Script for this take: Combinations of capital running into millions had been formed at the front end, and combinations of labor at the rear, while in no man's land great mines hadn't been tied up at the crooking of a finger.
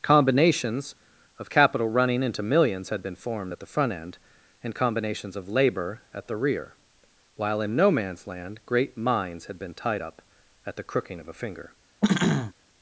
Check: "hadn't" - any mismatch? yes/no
yes